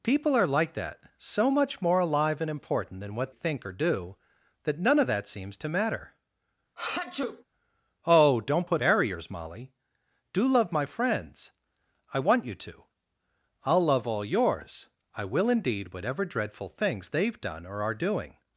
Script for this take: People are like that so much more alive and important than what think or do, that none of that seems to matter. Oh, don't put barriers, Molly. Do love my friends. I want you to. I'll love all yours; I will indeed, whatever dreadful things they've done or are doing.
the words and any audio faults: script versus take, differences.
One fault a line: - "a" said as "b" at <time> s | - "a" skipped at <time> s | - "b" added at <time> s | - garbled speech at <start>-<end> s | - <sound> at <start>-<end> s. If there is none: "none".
- sneeze at 6.8-7.4 s